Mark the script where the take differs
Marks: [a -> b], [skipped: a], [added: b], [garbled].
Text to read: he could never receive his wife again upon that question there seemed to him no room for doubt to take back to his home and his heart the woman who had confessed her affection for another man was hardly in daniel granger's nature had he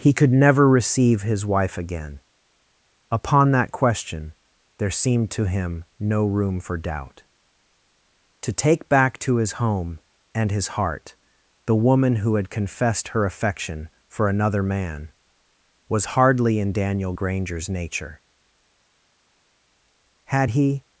he could never receive his wife again upon that question there seemed to him no room for doubt to take back to his home and his heart the woman who had confessed her affection for another man was hardly in daniel granger's nature had he